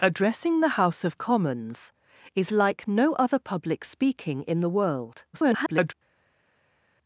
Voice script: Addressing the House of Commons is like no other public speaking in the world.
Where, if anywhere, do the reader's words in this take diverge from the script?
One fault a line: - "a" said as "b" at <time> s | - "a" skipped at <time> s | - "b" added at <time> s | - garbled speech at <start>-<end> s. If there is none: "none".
- garbled speech at 5.3-5.9 s